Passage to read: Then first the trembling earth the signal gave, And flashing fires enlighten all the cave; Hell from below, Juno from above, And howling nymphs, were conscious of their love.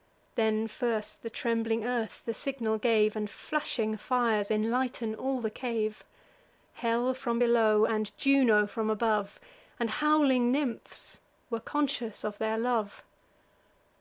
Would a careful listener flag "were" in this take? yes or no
no